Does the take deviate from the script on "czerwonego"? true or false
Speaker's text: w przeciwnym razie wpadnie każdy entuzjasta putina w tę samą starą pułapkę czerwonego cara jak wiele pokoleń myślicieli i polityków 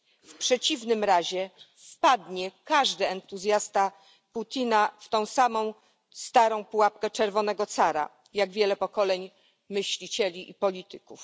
false